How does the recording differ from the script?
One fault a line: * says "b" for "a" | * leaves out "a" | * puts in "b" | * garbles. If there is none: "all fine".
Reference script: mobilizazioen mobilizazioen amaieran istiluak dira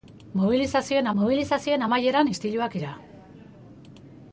all fine